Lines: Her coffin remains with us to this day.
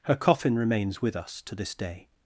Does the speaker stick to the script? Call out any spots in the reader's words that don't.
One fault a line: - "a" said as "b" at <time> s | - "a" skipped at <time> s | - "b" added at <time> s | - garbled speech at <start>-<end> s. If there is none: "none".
none